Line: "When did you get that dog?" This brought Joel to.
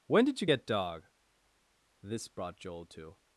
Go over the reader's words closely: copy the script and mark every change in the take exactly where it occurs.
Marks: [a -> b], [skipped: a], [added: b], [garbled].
"When did you get [skipped: that] dog?" This brought Joel to.